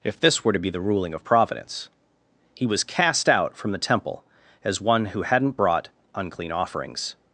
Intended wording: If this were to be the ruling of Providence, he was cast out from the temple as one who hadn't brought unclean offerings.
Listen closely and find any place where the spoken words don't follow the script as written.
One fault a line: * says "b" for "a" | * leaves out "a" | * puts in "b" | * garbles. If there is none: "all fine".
all fine